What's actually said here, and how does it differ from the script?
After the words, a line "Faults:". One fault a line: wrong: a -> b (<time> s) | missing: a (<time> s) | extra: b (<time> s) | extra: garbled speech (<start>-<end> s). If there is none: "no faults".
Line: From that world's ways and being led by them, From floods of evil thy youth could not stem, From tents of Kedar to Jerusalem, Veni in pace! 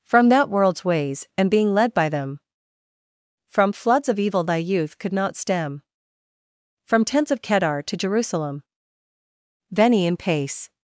From that world's ways and being led by them, From floods of evil thy youth could not stem, From tents of Kedar to Jerusalem, Veni in pace!
Faults:
no faults